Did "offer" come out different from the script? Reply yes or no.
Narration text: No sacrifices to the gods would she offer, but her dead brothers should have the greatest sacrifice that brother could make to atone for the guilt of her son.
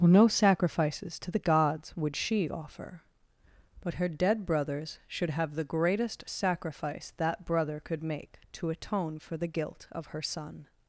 no